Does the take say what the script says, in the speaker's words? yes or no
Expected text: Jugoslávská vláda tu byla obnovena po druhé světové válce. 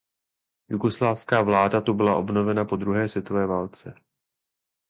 yes